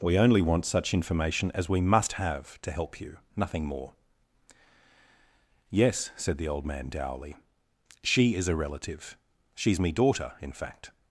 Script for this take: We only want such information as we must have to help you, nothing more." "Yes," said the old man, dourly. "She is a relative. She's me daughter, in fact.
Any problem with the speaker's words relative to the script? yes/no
no